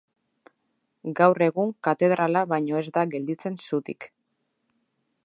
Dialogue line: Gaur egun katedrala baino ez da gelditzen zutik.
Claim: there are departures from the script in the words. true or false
false